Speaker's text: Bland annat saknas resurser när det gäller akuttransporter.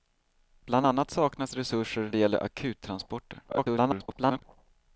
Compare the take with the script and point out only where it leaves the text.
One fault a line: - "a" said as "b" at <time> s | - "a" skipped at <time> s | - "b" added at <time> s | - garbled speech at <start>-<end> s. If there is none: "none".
- "när" skipped at 2.1 s
- garbled speech at 3.5-4.4 s